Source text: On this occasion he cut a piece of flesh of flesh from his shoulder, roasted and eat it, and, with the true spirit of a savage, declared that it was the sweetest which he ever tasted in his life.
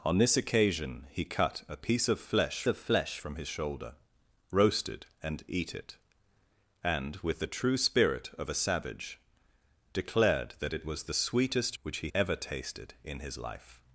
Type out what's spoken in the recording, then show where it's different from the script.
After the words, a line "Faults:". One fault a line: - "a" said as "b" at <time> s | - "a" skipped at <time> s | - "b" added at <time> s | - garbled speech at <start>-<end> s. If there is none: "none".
On this occasion he cut a piece of flesh of flesh from his shoulder, roasted and eat it, and, with the true spirit of a savage, declared that it was the sweetest which he ever tasted in his life.
Faults:
none